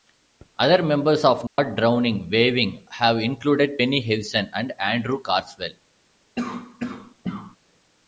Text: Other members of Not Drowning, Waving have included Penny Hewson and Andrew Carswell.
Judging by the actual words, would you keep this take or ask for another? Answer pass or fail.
pass